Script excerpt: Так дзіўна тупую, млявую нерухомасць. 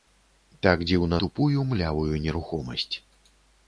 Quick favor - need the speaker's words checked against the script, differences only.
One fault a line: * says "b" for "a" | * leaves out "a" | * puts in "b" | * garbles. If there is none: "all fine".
all fine